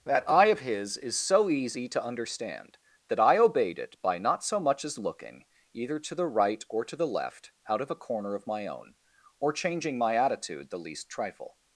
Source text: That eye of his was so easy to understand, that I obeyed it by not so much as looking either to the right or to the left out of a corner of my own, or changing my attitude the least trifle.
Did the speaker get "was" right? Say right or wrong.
wrong